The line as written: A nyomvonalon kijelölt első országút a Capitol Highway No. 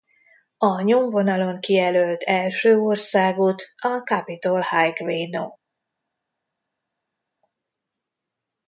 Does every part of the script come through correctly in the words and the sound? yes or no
yes